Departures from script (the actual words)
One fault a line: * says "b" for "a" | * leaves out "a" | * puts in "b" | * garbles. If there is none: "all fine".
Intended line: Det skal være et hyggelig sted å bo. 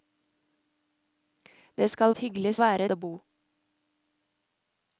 * leaves out "være"
* says "være" for "sted"